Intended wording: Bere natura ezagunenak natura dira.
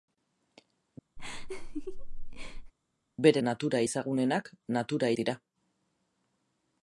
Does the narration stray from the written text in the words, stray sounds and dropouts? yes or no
yes